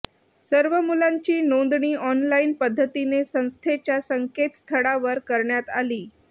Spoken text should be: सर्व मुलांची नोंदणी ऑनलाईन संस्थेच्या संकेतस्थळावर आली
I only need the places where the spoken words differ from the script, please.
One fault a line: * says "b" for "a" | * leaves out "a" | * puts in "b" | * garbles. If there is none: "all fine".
* puts in "पद्धतीने"
* puts in "करण्यात"